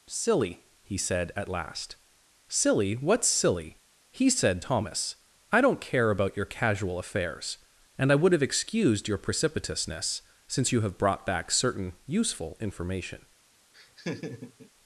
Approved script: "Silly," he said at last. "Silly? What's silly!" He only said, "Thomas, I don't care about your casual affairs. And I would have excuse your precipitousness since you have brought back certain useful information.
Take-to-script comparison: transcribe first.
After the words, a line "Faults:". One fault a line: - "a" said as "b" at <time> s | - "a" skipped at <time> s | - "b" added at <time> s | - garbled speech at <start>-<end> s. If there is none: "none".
"Silly," he said at last. "Silly? What's silly!" He said, "Thomas, I don't care about your casual affairs. And I would have excused your precipitousness since you have brought back certain useful information.
Faults:
- "only" skipped at 4.3 s
- "excuse" said as "excused" at 8.4 s